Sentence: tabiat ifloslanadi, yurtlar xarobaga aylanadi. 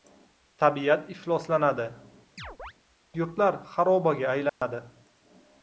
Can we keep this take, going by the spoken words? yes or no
yes